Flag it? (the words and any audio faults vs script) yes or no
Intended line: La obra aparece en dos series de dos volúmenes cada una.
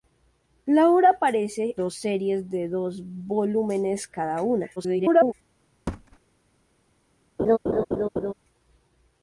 yes